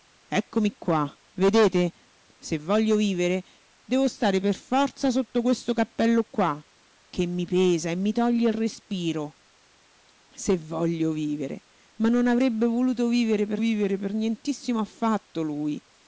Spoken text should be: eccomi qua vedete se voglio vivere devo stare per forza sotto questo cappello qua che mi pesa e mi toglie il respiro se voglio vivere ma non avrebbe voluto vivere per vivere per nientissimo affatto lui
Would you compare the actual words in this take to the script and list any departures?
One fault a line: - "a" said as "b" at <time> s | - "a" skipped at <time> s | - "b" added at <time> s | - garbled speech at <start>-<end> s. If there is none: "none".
none